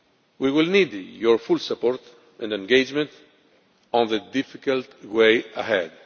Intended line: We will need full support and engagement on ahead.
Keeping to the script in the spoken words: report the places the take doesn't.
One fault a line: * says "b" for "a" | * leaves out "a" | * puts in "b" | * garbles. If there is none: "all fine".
* puts in "your"
* puts in "the difficult way"